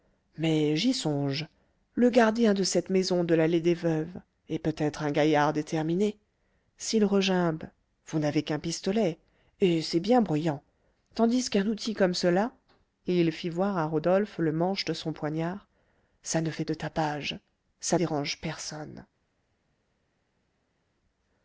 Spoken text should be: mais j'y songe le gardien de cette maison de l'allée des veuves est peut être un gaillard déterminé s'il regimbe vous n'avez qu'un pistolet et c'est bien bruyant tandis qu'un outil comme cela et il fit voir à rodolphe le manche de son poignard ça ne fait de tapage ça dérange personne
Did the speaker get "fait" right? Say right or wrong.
right